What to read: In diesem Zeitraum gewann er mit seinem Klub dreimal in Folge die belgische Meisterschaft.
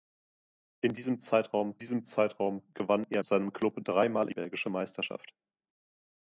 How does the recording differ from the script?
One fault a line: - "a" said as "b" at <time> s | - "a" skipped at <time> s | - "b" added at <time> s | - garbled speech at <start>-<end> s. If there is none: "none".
- "diesem Zeitraum" added at 1.8 s
- "mit" skipped at 3.2 s
- "in Folge" skipped at 4.3 s